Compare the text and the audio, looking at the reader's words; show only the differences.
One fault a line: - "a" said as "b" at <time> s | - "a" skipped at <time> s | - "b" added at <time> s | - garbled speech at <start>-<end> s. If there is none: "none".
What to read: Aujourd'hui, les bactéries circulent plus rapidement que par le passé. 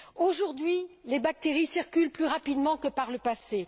none